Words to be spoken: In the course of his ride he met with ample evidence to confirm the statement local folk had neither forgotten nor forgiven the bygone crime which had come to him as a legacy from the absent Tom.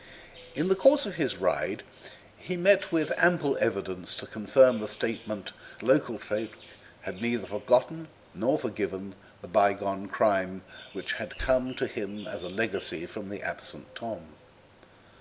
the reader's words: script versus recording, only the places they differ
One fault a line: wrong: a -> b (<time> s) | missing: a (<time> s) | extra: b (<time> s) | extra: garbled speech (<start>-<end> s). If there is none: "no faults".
no faults